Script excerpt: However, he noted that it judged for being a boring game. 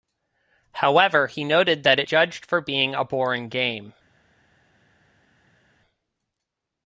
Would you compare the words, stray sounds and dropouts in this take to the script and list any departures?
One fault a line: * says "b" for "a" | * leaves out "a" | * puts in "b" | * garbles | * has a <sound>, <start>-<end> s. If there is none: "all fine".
all fine